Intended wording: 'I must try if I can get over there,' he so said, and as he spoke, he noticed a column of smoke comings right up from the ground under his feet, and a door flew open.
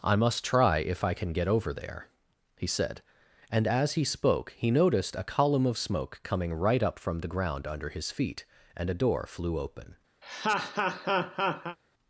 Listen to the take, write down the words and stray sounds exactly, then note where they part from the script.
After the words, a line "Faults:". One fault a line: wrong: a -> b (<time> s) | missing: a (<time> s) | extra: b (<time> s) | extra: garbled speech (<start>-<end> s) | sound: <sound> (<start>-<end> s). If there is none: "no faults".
'I must try if I can get over there,' he said, and as he spoke, he noticed a column of smoke coming right up from the ground under his feet, and a door flew open.
Faults:
missing: so (2.7 s)
wrong: comings -> coming (6.2 s)
sound: laugh (10.2-11.8 s)